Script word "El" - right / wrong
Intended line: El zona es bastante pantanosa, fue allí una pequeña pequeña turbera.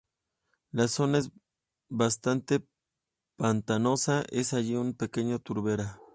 wrong